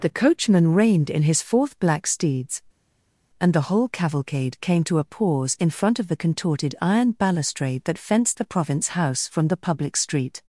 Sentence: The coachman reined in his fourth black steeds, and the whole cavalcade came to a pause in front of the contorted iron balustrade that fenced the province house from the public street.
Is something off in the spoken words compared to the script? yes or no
no